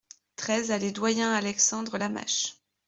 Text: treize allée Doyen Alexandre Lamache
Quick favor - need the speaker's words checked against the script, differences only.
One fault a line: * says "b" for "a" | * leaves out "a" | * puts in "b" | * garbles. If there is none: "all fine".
all fine